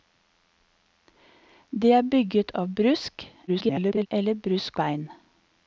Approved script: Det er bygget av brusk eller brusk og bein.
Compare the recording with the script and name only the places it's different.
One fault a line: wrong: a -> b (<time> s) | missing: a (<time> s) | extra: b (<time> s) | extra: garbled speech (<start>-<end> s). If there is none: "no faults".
extra: garbled speech (3.5-4.1 s)
missing: og (4.8 s)